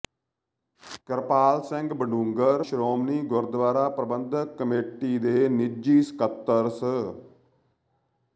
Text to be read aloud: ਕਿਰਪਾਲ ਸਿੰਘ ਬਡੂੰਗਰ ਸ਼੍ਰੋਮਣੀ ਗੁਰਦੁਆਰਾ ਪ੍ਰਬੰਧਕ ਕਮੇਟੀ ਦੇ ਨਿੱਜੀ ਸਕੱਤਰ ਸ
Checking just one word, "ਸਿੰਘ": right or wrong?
right